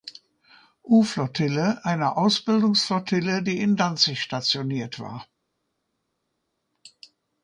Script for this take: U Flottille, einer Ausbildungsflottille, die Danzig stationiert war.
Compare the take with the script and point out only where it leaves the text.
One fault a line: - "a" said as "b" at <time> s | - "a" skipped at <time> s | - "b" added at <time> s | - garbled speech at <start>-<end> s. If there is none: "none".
- "in" added at 3.6 s